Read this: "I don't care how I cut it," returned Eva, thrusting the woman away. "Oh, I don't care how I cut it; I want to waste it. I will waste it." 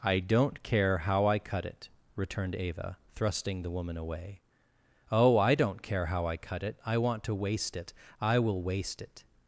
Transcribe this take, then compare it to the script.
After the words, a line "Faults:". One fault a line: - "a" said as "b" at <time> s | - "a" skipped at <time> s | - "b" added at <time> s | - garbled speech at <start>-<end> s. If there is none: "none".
"I don't care how I cut it," returned Eva, thrusting the woman away. "Oh, I don't care how I cut it; I want to waste it. I will waste it."
Faults:
none